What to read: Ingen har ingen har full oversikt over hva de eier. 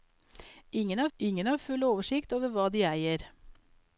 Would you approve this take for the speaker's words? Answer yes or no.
yes